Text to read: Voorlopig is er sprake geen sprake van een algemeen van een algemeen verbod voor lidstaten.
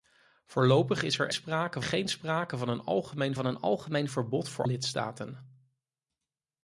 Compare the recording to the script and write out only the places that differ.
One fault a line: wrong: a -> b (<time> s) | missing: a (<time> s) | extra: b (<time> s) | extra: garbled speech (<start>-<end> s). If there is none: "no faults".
no faults